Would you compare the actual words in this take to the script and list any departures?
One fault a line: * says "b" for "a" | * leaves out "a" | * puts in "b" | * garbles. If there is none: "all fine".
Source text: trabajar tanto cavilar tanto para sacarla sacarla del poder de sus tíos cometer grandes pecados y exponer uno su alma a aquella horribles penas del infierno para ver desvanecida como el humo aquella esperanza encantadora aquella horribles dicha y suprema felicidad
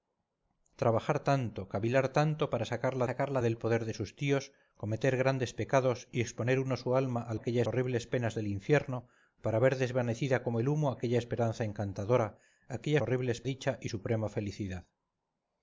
all fine